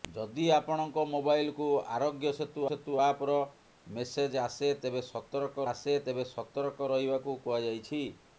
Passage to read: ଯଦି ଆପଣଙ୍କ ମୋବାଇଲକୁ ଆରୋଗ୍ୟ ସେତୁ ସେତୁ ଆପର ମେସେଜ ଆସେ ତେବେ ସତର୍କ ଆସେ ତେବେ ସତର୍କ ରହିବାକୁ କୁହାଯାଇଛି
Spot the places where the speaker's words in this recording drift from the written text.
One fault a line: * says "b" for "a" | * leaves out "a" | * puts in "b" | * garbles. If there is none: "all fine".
all fine